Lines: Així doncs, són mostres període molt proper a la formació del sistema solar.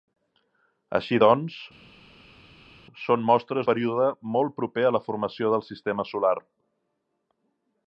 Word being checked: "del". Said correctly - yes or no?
yes